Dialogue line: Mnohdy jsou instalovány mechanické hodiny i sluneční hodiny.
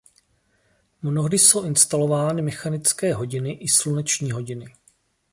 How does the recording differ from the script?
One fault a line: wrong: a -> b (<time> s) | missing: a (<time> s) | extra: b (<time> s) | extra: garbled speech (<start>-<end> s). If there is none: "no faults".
no faults